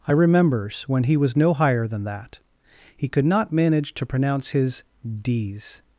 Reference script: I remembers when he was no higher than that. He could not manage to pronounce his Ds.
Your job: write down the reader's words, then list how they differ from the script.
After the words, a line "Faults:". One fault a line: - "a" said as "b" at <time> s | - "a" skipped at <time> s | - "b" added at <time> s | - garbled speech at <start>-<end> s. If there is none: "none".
I remembers when he was no higher than that. He could not manage to pronounce his Ds.
Faults:
none